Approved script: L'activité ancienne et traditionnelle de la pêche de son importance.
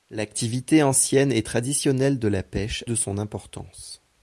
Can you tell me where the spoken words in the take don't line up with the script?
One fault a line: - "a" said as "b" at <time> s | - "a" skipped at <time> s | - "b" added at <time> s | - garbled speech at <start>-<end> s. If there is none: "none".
none